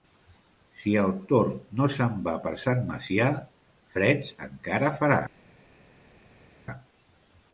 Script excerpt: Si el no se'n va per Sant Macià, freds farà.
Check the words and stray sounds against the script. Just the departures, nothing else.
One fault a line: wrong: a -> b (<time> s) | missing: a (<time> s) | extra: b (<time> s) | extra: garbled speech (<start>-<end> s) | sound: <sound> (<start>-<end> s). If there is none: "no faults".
extra: tord (1.3 s)
extra: encara (4.5 s)